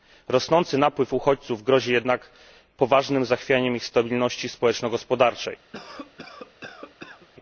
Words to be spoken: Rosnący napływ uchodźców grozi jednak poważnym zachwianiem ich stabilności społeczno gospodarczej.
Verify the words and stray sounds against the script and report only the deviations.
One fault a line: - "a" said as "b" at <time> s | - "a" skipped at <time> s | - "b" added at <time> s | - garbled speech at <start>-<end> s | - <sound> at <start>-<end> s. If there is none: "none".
- cough at 5.7-7.3 s